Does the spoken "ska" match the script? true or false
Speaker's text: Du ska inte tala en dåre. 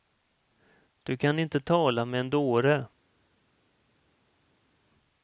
false